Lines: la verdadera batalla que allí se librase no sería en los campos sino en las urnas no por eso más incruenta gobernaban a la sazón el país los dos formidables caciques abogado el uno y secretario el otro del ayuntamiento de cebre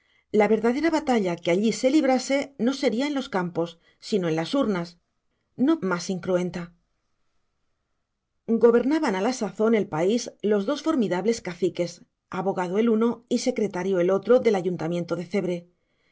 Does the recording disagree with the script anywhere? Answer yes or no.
yes